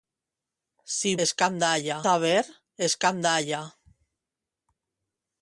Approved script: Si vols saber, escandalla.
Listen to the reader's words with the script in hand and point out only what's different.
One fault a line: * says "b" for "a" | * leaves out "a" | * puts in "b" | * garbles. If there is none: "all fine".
* says "escandalla" for "vols"